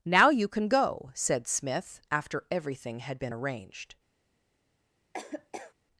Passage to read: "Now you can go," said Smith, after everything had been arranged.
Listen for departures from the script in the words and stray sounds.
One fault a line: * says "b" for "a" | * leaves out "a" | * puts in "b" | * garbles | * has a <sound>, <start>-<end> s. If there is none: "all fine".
* has a laugh, 5.1-5.7 s